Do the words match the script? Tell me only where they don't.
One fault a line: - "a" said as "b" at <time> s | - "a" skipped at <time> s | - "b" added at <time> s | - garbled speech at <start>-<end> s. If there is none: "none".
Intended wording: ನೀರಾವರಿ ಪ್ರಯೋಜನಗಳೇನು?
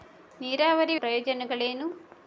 none